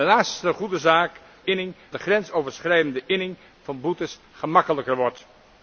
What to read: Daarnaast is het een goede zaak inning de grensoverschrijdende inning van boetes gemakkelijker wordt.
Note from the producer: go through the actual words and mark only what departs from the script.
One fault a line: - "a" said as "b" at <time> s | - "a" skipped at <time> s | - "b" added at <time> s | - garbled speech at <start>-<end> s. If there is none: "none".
none